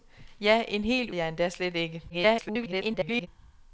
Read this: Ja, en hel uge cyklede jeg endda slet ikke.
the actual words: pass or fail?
fail